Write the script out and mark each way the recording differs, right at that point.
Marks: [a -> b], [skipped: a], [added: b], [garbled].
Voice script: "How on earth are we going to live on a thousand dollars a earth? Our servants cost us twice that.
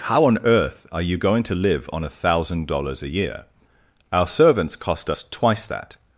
"How on earth are [we -> you] going to live on a thousand dollars a [earth? -> year] Our servants cost us twice that.